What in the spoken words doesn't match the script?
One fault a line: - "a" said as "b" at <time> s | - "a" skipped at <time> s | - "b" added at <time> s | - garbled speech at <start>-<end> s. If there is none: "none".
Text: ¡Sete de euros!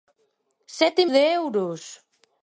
none